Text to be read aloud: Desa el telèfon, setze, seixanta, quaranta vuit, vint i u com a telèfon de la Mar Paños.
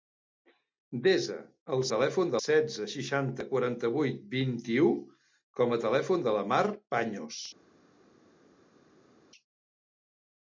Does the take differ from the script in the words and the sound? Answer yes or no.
no